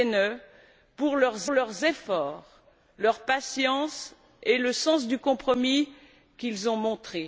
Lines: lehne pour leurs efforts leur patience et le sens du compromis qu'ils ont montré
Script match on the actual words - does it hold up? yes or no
no